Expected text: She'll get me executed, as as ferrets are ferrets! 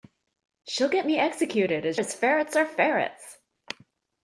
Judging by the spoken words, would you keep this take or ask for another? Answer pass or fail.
pass